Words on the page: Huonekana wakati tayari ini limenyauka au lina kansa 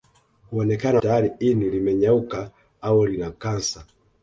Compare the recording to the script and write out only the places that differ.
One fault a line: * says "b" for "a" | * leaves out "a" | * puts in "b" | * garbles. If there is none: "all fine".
* leaves out "wakati"